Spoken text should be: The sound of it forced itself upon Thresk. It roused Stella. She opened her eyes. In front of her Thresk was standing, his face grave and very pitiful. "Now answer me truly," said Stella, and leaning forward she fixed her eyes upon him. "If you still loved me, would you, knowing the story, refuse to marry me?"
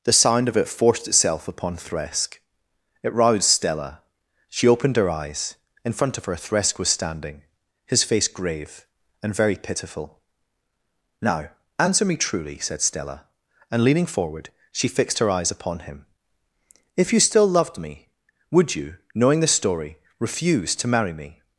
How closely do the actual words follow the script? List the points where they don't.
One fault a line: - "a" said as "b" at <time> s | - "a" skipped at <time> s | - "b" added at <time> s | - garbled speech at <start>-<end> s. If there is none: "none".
none